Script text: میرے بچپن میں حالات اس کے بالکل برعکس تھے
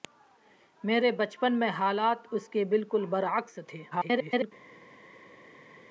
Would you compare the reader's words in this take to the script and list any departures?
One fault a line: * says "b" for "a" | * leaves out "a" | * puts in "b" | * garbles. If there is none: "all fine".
* garbles